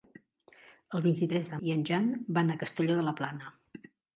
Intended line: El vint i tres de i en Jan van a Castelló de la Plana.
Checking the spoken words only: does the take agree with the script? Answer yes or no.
yes